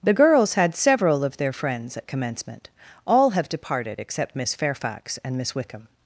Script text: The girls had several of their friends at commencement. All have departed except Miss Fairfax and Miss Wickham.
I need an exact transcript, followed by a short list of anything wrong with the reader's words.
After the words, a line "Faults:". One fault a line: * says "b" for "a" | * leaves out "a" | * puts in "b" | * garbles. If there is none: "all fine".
The girls had several of their friends at commencement. All have departed except Miss Fairfax and Miss Wickham.
Faults:
all fine